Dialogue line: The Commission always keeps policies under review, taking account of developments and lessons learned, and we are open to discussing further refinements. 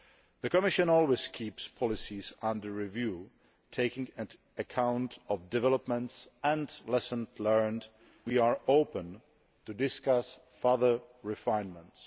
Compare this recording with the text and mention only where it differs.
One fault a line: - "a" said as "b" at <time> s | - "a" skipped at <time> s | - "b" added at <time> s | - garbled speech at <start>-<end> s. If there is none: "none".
- "and" skipped at 7.9 s